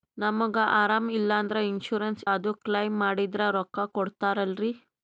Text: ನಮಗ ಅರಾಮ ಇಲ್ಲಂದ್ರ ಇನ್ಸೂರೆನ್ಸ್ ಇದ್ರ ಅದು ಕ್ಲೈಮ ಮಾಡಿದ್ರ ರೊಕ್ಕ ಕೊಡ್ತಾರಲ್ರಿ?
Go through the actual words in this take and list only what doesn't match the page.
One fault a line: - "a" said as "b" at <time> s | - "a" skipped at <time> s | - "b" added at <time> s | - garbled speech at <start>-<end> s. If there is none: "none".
- "ಇದ್ರ" skipped at 2.2 s